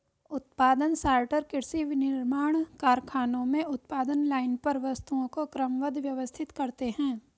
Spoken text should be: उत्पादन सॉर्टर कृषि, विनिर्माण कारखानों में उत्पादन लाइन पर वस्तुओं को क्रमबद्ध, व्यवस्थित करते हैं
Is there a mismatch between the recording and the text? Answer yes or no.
no